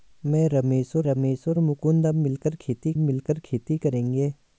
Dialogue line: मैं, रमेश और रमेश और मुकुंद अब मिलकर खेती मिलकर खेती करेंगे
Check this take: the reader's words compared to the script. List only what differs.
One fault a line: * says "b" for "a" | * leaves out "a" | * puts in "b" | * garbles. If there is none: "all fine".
all fine